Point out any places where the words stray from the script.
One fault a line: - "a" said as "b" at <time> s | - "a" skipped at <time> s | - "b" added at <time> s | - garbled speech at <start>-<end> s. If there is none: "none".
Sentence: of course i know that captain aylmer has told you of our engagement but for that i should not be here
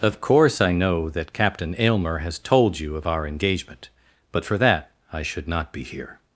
none